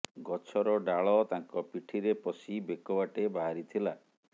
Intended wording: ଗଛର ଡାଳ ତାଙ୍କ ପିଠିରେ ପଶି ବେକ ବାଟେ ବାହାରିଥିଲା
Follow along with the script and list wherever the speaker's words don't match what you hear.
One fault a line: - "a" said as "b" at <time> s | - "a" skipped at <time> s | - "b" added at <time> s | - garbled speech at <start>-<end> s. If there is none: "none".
none